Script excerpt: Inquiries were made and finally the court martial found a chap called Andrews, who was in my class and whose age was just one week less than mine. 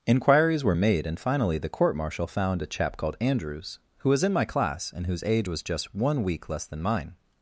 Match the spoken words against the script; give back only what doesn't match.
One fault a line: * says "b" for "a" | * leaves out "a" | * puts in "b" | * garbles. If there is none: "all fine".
all fine